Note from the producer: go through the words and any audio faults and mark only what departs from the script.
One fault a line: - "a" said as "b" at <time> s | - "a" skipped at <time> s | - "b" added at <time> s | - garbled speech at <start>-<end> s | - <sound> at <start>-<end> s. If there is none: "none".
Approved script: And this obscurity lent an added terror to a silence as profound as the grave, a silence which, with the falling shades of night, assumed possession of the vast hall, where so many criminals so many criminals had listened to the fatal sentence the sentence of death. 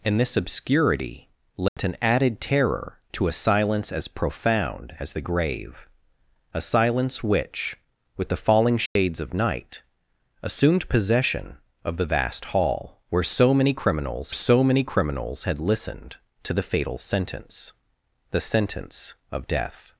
- dropout at 1.7-1.8 s
- dropout at 8.9-9.0 s